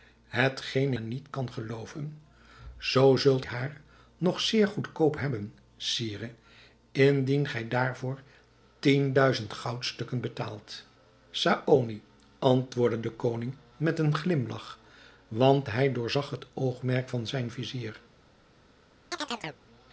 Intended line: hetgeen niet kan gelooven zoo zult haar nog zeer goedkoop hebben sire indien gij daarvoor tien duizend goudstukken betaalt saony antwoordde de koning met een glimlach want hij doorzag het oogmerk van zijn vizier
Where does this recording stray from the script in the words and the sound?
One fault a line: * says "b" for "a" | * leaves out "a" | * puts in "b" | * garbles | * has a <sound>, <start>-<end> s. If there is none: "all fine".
* has a chirp, 19.1-19.6 s